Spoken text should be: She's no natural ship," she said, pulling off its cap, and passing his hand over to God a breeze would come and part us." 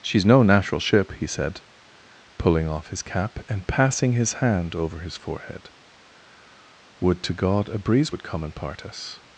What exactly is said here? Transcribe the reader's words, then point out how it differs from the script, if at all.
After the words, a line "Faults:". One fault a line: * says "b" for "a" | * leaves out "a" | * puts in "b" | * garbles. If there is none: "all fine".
She's no natural ship," he said, pulling off his cap, and passing his hand over his forehead." Would to God a breeze would come and part us."
Faults:
* says "he" for "she"
* says "his" for "its"
* puts in "his forehead Would"